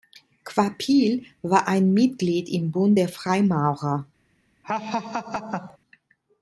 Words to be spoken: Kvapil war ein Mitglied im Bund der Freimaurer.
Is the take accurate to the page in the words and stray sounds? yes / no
no